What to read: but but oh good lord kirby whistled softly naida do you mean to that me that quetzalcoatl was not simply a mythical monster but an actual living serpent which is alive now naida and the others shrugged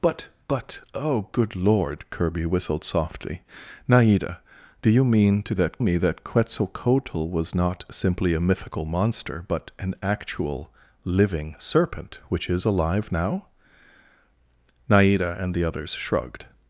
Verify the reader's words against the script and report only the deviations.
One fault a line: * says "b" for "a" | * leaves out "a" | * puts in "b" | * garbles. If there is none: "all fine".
all fine